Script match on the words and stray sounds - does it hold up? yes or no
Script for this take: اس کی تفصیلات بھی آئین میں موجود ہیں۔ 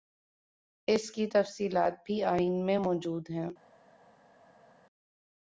yes